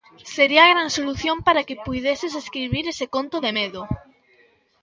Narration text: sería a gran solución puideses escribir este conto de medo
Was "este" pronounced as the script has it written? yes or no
no